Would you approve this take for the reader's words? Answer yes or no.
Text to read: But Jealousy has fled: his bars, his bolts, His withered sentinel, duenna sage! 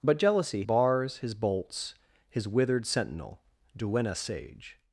no